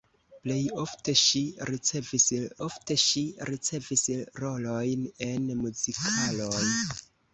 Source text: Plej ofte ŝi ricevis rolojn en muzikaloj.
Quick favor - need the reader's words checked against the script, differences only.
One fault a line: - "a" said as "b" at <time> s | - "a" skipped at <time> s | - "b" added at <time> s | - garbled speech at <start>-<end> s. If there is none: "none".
- "ofte ŝi ricevis" added at 2.7 s